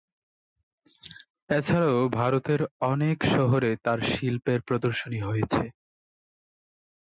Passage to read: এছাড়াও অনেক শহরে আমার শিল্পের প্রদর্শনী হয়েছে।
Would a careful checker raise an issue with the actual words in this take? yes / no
yes